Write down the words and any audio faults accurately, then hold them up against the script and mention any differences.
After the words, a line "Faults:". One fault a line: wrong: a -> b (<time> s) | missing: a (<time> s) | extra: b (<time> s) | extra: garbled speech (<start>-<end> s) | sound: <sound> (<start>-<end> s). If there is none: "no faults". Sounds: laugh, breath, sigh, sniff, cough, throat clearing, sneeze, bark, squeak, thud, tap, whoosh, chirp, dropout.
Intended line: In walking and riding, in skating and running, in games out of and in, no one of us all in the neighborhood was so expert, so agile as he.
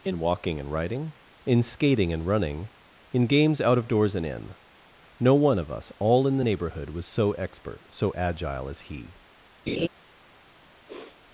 In walking and riding, in skating and running, in games out of doors and in, no one of us all in the neighborhood was so expert, so agile as he.
Faults:
extra: doors (3.9 s)
sound: laugh (9.7-9.9 s)
sound: sniff (10.9-11.2 s)